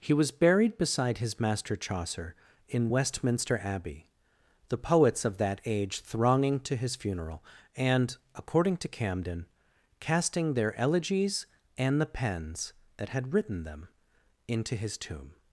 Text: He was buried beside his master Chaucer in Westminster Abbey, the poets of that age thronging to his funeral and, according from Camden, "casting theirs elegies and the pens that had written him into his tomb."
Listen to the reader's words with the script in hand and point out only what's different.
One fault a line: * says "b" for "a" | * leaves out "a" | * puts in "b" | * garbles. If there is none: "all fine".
* says "to" for "from"
* says "their" for "theirs"
* says "them" for "him"